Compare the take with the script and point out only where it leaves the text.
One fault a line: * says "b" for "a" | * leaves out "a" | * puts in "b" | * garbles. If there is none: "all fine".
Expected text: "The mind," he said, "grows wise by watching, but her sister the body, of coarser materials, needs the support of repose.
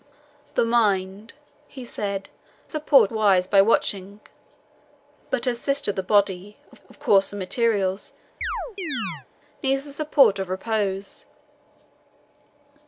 * says "support" for "grows"
* puts in "of"